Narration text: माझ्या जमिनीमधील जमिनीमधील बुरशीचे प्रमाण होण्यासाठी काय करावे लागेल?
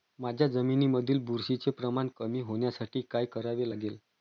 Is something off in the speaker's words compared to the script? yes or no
yes